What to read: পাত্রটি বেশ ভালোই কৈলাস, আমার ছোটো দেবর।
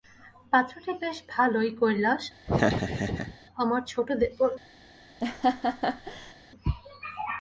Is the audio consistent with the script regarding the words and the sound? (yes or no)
no